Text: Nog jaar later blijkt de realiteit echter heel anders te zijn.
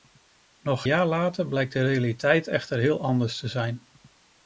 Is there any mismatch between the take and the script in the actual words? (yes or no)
no